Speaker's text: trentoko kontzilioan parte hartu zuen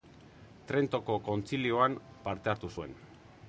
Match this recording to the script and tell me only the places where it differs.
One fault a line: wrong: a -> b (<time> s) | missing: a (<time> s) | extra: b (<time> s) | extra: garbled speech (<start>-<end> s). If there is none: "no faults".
no faults